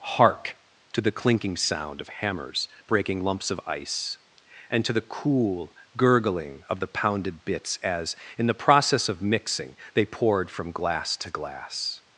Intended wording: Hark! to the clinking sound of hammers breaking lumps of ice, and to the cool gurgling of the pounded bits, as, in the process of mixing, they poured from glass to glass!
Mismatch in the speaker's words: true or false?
false